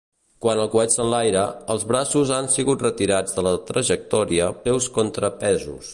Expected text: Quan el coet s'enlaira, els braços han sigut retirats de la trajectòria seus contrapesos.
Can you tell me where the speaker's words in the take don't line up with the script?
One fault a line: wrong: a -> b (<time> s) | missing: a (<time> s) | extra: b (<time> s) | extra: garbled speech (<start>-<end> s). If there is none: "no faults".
no faults